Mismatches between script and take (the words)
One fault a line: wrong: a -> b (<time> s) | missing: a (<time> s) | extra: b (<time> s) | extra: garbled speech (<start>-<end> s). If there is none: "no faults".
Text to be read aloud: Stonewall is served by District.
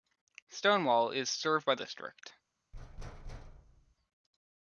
no faults